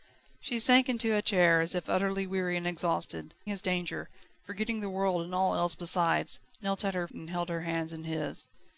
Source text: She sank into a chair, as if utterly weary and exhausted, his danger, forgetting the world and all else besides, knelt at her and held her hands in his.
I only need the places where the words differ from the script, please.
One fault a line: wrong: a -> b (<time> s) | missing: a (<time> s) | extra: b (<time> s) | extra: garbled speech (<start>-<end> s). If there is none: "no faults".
no faults